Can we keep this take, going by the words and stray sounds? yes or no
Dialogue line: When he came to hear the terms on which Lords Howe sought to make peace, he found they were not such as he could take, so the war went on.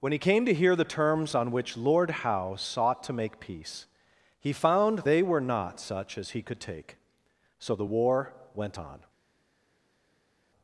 no